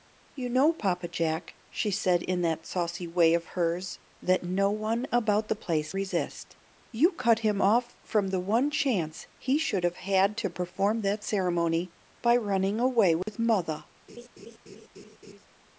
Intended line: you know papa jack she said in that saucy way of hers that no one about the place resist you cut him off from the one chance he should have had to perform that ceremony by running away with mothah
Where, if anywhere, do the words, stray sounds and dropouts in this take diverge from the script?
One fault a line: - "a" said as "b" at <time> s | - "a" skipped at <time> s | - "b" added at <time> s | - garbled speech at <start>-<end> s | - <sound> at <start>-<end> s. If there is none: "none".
- dropout at 13.2-13.3 s
- laugh at 14.1-15.5 s